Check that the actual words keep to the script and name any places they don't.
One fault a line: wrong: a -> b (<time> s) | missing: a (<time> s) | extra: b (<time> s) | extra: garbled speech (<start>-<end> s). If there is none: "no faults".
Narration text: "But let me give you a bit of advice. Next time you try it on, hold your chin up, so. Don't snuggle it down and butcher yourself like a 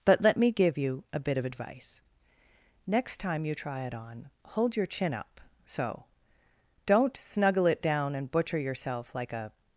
no faults